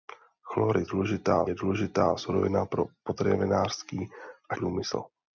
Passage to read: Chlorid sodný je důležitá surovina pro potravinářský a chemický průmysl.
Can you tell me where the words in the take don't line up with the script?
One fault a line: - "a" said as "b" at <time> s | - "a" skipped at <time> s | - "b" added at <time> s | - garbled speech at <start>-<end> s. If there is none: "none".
- "sodný" said as "důležitá" at 0.8 s
- "chemický" skipped at 4.5 s